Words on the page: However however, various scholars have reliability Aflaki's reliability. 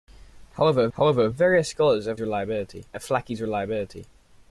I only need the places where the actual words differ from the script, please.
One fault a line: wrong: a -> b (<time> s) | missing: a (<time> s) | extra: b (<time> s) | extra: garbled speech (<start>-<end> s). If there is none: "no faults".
no faults